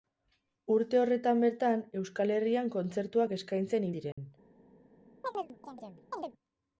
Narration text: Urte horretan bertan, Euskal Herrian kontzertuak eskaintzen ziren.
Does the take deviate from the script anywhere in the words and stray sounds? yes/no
yes